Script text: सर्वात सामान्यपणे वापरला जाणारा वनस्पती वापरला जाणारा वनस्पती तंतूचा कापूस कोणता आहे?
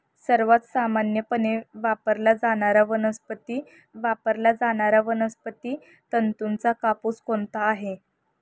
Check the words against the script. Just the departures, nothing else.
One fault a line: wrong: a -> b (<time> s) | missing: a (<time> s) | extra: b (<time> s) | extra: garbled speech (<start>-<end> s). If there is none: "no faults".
no faults